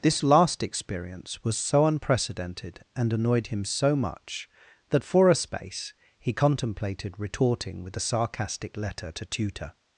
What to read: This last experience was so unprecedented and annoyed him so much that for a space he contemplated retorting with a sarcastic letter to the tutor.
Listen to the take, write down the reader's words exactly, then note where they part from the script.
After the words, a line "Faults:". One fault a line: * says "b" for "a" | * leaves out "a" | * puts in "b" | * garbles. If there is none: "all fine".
This last experience was so unprecedented and annoyed him so much that for a space he contemplated retorting with a sarcastic letter to tutor.
Faults:
* leaves out "the"